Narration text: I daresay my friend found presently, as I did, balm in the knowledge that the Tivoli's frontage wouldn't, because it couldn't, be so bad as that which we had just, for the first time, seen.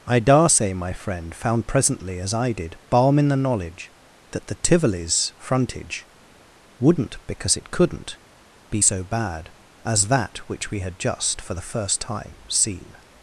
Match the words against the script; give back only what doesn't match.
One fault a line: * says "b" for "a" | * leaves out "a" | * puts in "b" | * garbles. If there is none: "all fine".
all fine